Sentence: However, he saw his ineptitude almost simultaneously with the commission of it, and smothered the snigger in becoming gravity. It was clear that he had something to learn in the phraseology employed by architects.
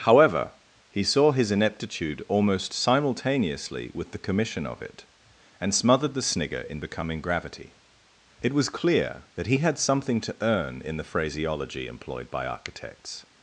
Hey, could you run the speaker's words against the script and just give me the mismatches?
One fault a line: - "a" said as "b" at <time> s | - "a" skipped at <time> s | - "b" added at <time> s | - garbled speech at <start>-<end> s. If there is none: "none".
- "learn" said as "earn" at 10.4 s